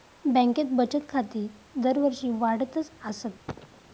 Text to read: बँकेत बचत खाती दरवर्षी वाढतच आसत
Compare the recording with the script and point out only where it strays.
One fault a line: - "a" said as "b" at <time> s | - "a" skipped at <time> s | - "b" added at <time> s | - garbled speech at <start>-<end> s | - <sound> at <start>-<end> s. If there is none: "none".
- cough at 3.5-3.8 s